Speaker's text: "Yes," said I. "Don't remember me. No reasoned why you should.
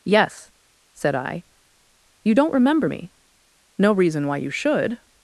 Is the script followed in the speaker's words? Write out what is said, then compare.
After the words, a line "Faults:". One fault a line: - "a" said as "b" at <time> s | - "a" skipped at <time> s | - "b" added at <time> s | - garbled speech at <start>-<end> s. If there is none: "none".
"Yes," said I. "You don't remember me. No reason why you should.
Faults:
- "You" added at 2.2 s
- "reasoned" said as "reason" at 3.9 s